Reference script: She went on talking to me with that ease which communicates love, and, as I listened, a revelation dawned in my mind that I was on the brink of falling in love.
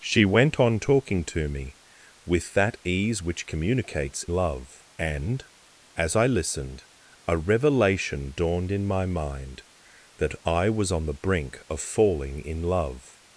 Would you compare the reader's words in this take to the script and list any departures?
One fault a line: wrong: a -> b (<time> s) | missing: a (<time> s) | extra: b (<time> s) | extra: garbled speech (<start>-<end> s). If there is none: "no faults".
no faults